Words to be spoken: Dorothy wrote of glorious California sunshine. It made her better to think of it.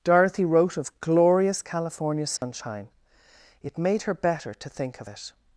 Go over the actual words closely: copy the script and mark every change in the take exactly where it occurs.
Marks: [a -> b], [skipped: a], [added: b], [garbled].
Dorothy wrote of glorious California sunshine. It made her better to think of it.